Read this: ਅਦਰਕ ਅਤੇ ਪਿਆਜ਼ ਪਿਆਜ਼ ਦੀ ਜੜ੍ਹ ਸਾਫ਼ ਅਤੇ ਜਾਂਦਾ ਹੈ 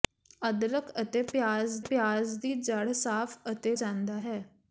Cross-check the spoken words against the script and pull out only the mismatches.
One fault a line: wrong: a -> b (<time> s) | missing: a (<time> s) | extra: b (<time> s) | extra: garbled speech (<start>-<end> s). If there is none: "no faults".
no faults